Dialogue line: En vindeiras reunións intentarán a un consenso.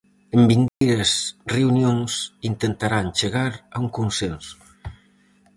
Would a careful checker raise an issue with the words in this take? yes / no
yes